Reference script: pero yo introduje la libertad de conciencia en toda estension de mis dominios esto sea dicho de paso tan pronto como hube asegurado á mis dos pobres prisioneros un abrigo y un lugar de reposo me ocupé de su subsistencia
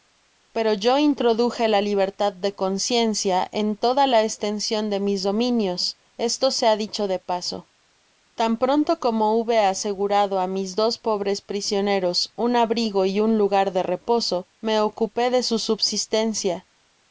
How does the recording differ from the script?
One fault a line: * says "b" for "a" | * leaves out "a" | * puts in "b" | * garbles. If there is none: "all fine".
* puts in "la"